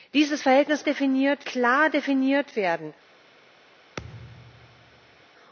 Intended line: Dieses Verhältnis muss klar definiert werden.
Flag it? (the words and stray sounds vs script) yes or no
yes